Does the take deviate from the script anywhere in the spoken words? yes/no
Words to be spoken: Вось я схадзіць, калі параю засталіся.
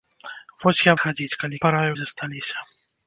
no